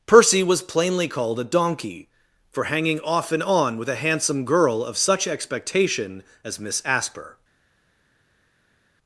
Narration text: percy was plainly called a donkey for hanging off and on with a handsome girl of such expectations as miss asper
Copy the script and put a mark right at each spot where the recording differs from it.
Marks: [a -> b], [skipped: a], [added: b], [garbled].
percy was plainly called a donkey for hanging off and on with a handsome girl of such [expectations -> expectation] as miss asper